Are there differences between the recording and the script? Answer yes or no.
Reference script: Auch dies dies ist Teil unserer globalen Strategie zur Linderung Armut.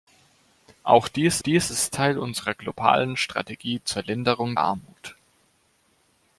no